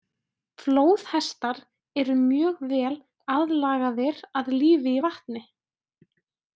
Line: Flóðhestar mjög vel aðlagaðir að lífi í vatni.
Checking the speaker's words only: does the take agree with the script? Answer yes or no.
no